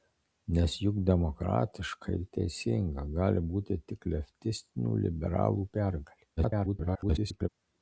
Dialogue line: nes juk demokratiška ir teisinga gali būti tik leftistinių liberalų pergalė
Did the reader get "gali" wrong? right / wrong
right